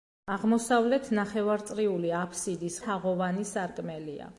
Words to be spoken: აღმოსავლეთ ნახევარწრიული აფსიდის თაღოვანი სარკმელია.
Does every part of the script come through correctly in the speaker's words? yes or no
yes